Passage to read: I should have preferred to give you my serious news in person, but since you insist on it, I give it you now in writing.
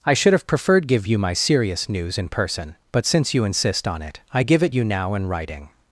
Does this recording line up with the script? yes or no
no